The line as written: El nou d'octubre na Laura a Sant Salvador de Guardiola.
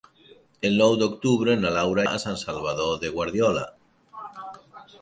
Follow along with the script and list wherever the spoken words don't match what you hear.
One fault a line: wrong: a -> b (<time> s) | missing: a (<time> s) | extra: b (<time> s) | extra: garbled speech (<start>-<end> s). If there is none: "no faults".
no faults